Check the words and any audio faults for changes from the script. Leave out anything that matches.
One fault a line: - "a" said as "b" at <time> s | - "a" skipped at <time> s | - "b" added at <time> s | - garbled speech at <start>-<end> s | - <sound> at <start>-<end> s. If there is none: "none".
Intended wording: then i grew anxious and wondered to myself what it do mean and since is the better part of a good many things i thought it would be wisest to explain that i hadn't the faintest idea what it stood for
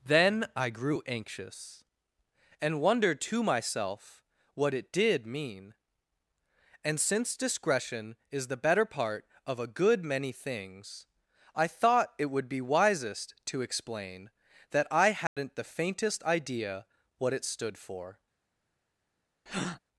- "do" said as "did" at 4.9 s
- "discretion" added at 7.4 s
- dropout at 15.3-15.4 s
- breath at 19.5-19.8 s